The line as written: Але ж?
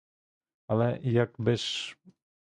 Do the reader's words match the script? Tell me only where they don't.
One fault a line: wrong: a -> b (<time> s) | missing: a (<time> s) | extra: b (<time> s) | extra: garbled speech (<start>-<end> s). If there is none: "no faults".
extra: як би (1.0 s)